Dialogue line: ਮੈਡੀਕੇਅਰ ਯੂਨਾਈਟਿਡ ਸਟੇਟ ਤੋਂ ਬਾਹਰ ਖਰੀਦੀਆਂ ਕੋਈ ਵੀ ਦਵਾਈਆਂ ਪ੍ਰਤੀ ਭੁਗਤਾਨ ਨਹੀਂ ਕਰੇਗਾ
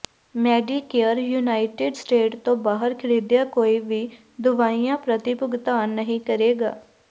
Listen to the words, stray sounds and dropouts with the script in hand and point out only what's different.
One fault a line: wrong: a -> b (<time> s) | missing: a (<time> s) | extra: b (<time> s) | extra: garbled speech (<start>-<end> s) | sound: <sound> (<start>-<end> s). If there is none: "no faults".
no faults